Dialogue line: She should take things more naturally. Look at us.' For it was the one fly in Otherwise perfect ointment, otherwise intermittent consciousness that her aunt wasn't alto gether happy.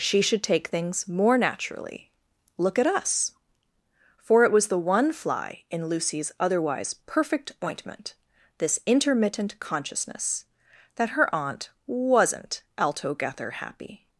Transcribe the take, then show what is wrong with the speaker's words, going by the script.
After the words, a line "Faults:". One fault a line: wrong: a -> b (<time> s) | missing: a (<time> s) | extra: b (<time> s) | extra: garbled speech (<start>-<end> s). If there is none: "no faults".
She should take things more naturally. Look at us.' For it was the one fly in Lucy's otherwise perfect ointment, this intermittent consciousness that her aunt wasn't alto gether happy.
Faults:
extra: Lucy's (5.9 s)
wrong: otherwise -> this (8.6 s)